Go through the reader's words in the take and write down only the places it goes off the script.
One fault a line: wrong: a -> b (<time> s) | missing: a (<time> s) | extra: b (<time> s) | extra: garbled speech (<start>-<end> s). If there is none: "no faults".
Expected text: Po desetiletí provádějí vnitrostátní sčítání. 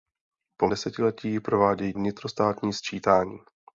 no faults